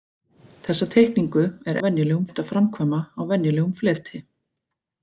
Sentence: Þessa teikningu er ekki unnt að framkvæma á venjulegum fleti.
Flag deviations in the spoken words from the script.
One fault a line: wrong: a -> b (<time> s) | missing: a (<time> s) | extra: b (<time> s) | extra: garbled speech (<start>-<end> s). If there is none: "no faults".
wrong: ekki -> venjulegum (1.9 s)